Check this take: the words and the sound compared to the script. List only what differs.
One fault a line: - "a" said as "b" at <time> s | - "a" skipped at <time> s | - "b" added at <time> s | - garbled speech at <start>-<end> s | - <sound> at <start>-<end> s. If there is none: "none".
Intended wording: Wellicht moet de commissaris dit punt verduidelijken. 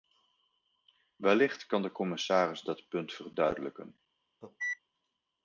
- "moet" said as "kan" at 1.6 s
- "dit" said as "dat" at 2.6 s
- cough at 4.4-4.8 s